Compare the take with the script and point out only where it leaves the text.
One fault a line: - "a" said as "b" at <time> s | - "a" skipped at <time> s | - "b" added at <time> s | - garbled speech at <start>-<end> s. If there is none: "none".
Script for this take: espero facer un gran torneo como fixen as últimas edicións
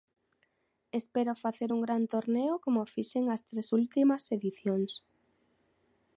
- "tres" added at 3.5 s